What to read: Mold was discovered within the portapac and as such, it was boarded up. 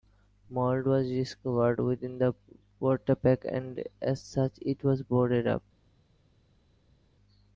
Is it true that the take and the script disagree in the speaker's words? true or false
false